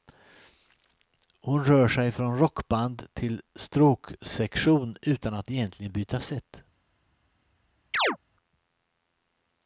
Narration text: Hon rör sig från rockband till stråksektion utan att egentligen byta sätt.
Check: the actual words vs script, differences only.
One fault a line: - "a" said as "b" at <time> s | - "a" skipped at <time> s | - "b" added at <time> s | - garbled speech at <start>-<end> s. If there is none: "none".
none